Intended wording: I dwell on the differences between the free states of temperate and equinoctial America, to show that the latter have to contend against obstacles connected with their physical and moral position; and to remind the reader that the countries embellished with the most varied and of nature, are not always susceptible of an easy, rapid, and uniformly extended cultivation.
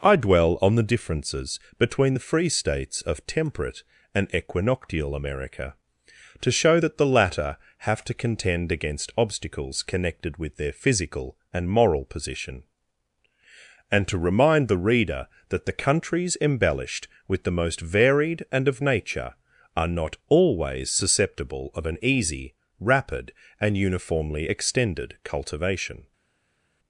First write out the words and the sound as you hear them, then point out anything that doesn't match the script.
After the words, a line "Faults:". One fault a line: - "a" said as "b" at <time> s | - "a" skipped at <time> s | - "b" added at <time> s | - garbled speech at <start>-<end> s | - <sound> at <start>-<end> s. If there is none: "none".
I dwell on the differences between the free states of temperate and equinoctial America, to show that the latter have to contend against obstacles connected with their physical and moral position; and to remind the reader that the countries embellished with the most varied and of nature, are not always susceptible of an easy, rapid, and uniformly extended cultivation.
Faults:
none